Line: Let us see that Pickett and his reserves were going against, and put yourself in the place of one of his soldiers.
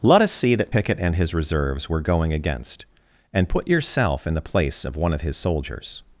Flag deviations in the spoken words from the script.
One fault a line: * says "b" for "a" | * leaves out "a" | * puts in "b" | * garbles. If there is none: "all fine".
all fine